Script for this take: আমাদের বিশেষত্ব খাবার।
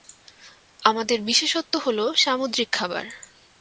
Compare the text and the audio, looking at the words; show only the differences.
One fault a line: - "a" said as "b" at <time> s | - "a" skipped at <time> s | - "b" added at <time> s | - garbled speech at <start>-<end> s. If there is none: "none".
- "হলো সামুদ্রিক" added at 1.8 s